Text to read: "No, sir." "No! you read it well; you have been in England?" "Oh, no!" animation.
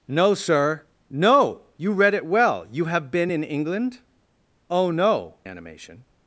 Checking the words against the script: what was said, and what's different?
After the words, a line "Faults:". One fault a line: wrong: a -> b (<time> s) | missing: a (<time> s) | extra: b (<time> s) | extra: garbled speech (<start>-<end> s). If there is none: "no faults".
"No, sir." "No! you read it well; you have been in England?" "Oh, no!" animation.
Faults:
no faults